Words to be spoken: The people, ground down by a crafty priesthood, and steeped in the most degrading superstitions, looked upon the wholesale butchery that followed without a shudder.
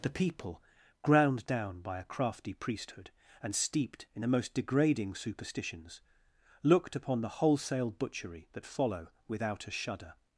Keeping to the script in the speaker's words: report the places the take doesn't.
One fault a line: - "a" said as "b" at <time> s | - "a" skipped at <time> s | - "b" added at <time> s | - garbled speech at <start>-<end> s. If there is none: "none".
- "followed" said as "follow" at 8.6 s